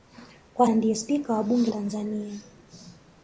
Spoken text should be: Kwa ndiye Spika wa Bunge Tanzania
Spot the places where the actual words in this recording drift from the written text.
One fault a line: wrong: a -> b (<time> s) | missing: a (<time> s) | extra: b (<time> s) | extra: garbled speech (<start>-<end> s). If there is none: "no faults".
no faults